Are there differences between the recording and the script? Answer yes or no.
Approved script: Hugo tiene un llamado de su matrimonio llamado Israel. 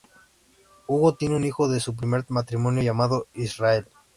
yes